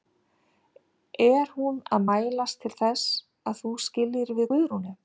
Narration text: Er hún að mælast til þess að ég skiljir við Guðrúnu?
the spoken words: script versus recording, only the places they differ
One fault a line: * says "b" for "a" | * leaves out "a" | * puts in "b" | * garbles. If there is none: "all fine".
* says "þú" for "ég"